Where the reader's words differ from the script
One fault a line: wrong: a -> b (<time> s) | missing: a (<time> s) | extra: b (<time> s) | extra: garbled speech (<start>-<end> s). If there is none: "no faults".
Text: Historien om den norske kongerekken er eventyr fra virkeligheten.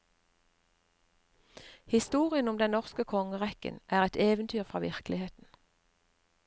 extra: et (4.0 s)